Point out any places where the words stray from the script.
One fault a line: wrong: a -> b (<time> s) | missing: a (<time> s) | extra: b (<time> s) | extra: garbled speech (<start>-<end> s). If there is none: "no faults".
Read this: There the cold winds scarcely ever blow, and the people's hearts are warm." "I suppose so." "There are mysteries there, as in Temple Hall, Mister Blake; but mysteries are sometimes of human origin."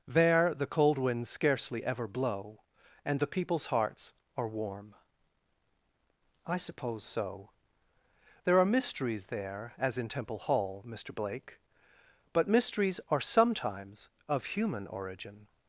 no faults